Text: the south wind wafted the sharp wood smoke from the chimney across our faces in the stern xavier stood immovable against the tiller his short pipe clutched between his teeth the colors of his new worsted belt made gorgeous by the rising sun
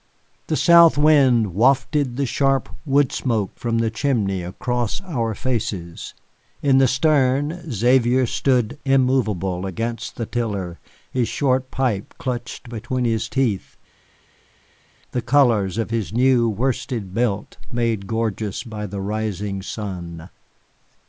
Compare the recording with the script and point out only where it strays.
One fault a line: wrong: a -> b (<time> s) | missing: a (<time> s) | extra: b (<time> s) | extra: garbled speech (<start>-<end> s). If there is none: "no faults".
no faults